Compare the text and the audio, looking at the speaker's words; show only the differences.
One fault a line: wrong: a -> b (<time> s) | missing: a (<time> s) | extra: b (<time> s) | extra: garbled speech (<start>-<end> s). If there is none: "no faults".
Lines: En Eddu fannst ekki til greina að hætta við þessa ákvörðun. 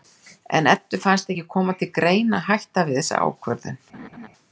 extra: koma (1.5 s)